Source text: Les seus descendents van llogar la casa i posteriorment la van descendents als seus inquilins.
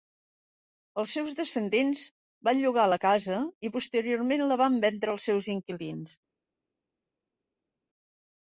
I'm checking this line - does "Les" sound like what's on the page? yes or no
no